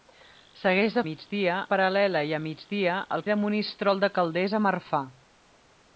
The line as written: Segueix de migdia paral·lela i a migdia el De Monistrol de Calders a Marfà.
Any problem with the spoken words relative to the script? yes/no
no